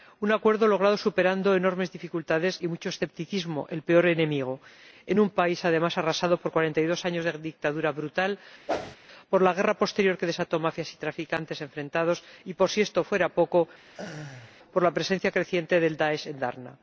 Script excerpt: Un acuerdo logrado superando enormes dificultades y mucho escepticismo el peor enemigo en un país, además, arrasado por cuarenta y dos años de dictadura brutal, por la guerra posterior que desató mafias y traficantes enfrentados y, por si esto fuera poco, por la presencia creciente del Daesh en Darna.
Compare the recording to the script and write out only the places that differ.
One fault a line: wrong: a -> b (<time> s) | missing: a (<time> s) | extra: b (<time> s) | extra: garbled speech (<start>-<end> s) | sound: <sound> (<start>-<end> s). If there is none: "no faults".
sound: whoosh (8.7-9.0 s)
sound: laugh (13.9-14.6 s)